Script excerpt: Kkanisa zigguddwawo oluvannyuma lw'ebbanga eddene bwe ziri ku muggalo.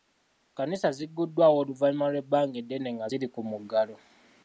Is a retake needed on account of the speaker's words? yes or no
yes